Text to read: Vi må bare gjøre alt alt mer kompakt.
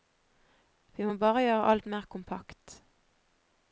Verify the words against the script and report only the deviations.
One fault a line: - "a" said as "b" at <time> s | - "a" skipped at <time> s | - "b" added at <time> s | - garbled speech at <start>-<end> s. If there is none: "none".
- "alt" skipped at 1.9 s